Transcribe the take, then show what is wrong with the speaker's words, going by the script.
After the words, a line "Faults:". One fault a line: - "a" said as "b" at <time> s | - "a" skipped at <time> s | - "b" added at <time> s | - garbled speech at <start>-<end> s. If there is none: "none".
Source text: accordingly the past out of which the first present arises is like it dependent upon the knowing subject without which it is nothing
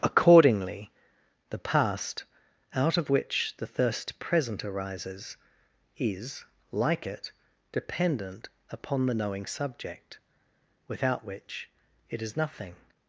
accordingly the past out of which the thirst present arises is like it dependent upon the knowing subject without which it is nothing
Faults:
- "first" said as "thirst" at 3.7 s